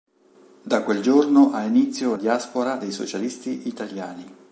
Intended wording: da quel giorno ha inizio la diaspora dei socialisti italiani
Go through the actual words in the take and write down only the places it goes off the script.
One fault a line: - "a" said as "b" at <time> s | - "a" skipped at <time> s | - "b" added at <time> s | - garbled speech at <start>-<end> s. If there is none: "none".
- "la" skipped at 2.1 s